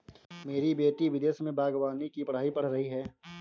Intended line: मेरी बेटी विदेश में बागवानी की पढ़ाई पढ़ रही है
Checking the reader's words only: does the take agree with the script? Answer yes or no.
yes